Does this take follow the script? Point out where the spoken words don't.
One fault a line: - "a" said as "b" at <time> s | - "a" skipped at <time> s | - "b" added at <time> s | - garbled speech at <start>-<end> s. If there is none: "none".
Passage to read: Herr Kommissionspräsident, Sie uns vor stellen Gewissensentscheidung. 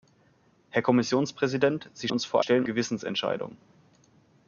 none